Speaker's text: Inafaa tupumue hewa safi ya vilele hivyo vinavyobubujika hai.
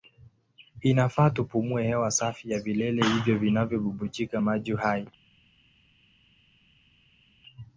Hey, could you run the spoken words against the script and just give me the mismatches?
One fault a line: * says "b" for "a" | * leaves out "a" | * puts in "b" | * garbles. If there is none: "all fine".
* puts in "maji"